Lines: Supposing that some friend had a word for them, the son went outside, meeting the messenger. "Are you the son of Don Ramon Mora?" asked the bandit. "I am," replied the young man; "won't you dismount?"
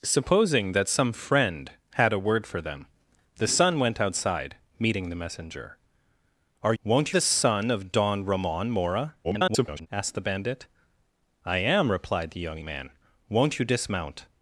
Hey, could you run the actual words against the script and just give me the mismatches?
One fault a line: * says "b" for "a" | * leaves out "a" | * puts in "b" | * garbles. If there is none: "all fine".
* says "won't" for "you"
* garbles